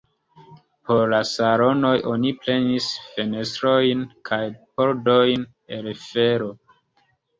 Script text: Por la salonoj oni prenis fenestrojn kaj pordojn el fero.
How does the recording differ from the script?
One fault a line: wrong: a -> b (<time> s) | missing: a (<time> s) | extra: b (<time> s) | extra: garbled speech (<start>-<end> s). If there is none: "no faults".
no faults